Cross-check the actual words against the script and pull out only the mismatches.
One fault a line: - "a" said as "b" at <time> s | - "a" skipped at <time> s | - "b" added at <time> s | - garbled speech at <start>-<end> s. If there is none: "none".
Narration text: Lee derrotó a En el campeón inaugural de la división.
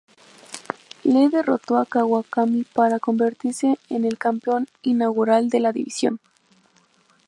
- "Kawakami para convertirse" added at 1.8 s